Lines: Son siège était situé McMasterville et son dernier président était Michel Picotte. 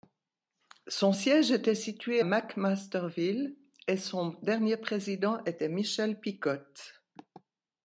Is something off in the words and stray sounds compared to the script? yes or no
no